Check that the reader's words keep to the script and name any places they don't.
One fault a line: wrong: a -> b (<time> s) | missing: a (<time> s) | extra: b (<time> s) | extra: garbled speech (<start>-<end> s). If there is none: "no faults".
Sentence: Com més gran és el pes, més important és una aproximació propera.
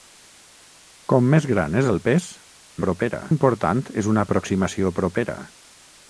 wrong: més -> propera (2.9 s)